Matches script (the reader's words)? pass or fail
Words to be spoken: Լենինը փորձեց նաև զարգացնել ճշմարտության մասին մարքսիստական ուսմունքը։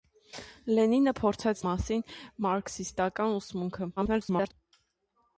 fail